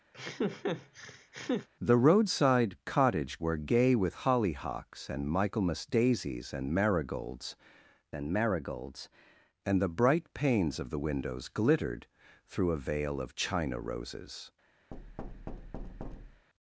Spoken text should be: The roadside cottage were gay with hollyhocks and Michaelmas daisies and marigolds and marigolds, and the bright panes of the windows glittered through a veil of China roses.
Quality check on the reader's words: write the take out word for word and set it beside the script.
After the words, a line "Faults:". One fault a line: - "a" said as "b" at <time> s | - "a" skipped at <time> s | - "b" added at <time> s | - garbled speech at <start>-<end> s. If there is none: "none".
The roadside cottage were gay with hollyhocks and Michaelmas daisies and marigolds and marigolds, and the bright panes of the windows glittered through a veil of China roses.
Faults:
none